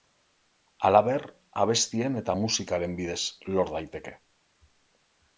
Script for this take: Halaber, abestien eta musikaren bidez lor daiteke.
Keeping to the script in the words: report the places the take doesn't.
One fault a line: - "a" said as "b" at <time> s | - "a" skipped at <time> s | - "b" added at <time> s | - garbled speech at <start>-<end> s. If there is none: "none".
none